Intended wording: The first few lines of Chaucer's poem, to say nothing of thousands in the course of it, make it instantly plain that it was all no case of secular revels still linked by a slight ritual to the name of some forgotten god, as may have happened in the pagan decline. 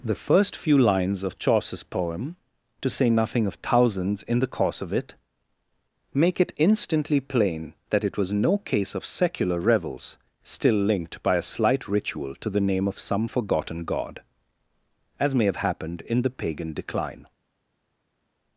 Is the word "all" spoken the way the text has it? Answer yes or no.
no